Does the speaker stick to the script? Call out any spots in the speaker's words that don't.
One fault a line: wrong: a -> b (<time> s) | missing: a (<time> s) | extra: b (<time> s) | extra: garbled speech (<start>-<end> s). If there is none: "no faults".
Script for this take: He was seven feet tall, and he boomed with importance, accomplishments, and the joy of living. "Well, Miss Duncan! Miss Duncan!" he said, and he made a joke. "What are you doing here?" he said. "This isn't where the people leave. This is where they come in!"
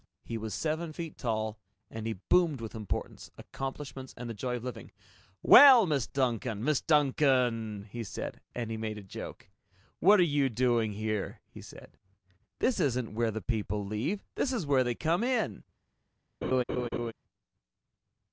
no faults